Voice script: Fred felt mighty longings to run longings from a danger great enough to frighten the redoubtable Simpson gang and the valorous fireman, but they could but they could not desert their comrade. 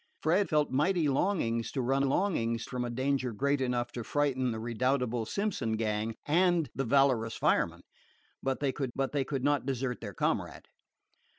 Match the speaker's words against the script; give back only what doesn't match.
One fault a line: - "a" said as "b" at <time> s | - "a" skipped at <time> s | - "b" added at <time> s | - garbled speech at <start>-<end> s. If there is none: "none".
none